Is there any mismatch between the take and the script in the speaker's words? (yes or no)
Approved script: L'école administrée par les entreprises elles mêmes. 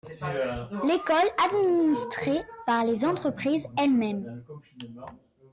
no